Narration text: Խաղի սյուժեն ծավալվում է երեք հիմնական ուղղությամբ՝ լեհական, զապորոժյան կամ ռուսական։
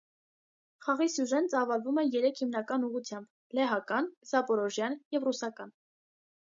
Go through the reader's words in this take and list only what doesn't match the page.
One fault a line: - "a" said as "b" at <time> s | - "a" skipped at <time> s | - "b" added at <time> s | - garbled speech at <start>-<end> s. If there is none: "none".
- "կամ" said as "և" at 5.2 s